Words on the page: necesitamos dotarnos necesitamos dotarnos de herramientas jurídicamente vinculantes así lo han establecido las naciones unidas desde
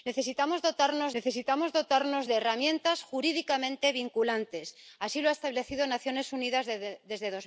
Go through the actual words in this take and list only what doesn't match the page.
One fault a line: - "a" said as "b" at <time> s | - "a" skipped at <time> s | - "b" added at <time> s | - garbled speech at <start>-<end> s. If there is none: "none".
none